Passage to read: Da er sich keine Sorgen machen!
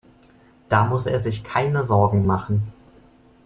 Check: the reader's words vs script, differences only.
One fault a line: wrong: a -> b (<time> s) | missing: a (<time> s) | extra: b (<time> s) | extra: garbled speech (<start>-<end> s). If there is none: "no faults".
extra: muss (0.8 s)